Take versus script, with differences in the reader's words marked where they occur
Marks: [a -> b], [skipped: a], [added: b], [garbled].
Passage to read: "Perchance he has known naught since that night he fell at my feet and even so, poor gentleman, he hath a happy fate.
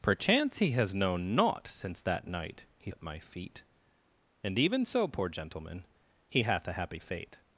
"Perchance he has known naught since that night he [skipped: fell] at my feet and even so, poor gentleman, he hath a happy fate.